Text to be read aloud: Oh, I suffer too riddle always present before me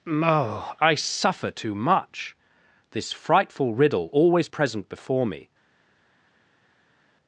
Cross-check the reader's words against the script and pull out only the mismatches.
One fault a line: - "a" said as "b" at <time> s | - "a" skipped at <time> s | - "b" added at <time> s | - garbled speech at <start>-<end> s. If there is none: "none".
- "much This frightful" added at 1.8 s